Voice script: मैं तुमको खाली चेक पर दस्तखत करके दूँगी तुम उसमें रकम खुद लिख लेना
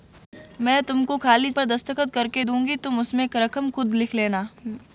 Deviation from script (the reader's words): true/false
true